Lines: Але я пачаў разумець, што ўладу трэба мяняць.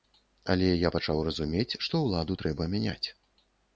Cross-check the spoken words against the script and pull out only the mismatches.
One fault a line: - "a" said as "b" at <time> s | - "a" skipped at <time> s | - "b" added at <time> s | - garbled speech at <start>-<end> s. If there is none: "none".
none